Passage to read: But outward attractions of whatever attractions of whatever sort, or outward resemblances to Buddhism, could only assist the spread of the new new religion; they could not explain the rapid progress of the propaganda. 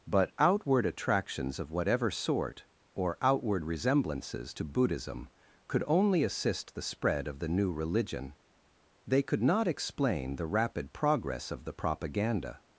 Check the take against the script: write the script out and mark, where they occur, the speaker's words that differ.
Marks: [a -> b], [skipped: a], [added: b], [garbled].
But outward attractions of whatever [skipped: attractions of whatever] sort, or outward resemblances to Buddhism, could only assist the spread of the new [skipped: new] religion; they could not explain the rapid progress of the propaganda.